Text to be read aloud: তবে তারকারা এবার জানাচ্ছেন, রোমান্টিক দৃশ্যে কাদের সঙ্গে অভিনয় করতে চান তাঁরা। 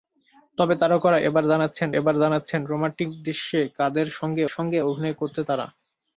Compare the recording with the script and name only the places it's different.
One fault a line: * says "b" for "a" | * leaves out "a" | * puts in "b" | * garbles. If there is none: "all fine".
* puts in "এবার জানাচ্ছেন"
* puts in "সঙ্গে"
* leaves out "চান"